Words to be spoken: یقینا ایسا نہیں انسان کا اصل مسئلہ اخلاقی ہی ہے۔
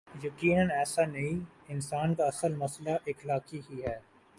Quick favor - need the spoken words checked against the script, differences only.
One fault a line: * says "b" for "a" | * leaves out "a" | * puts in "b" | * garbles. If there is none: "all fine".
all fine